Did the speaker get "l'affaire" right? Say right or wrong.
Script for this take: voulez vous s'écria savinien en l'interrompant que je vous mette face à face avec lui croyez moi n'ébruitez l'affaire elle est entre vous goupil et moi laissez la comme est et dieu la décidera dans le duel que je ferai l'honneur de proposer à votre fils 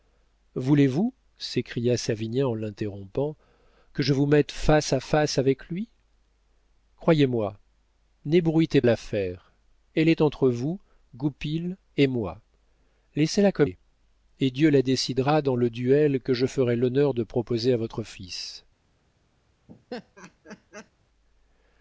right